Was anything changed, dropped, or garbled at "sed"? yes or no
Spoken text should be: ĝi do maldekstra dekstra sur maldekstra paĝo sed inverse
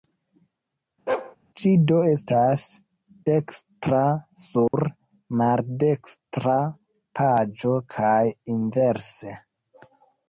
yes